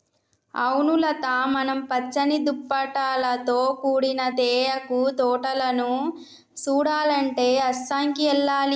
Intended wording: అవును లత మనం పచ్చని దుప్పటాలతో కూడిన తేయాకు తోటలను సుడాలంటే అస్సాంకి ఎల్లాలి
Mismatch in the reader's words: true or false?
false